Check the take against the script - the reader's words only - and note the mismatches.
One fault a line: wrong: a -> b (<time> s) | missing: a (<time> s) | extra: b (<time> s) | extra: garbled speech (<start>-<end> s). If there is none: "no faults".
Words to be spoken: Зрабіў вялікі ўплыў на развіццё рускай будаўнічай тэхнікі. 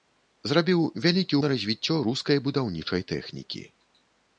missing: ўплыў (1.4 s)